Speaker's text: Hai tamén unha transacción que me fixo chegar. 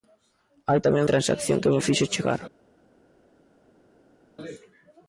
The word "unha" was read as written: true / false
false